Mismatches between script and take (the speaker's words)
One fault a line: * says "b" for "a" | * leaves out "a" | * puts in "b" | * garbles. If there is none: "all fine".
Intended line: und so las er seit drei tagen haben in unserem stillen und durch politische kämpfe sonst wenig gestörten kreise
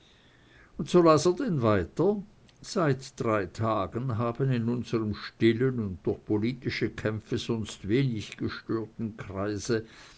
* puts in "denn weiter"